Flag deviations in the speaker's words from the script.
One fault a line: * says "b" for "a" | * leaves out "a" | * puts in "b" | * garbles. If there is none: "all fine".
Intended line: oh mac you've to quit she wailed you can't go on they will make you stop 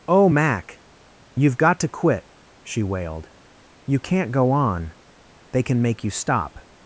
* puts in "got"
* says "can" for "will"